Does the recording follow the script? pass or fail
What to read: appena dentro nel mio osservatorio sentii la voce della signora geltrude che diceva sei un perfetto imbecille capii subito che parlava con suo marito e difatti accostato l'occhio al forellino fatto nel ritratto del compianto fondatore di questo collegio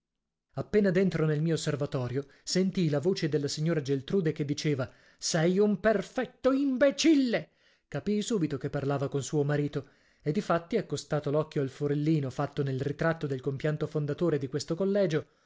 pass